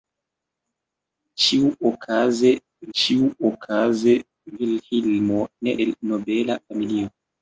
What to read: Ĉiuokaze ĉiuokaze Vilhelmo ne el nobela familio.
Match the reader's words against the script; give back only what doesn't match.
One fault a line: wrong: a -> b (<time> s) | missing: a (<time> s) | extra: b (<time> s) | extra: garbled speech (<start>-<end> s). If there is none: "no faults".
no faults